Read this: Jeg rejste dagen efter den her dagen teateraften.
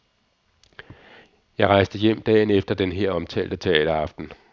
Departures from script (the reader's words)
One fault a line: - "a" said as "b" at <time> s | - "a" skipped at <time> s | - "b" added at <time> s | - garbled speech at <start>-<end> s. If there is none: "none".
- "hjem" added at 2.0 s
- "dagen" said as "omtalte" at 3.1 s